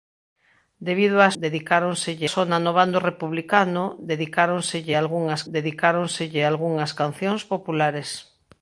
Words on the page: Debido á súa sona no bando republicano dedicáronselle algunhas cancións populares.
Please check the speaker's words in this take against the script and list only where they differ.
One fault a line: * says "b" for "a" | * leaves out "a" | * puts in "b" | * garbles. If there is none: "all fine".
* says "dedicáronselle" for "súa"
* puts in "dedicáronselle algunhas"